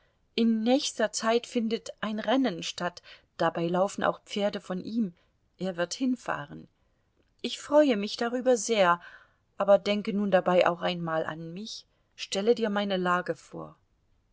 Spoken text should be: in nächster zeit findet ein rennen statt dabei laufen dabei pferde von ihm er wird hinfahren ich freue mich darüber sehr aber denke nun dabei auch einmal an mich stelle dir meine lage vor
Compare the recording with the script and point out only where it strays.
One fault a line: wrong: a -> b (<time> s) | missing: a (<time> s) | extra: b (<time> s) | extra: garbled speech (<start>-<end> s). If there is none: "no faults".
wrong: dabei -> auch (4.0 s)